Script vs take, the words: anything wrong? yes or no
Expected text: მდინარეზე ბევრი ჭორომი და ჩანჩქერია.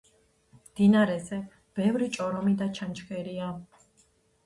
no